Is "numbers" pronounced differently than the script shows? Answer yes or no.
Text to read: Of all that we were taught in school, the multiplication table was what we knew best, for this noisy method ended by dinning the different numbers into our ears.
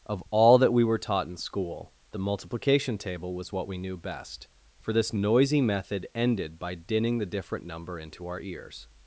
yes